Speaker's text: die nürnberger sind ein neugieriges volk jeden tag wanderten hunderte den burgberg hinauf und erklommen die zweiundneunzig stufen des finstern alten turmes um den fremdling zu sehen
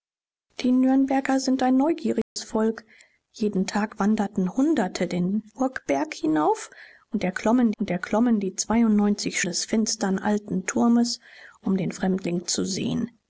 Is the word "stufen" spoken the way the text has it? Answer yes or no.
no